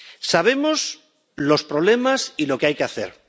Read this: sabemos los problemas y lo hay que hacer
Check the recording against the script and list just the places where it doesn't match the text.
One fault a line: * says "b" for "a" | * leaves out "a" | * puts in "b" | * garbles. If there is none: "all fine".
* puts in "que"